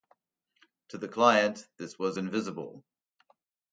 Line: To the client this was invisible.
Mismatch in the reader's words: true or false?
false